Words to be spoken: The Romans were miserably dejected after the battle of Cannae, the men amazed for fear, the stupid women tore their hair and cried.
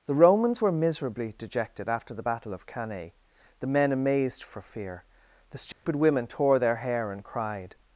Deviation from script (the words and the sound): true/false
true